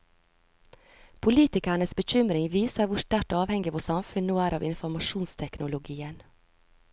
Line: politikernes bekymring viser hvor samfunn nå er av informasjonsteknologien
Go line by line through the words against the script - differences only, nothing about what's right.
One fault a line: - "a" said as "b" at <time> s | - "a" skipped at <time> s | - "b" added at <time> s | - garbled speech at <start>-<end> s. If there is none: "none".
- "sterkt avhengig vårt" added at 3.0 s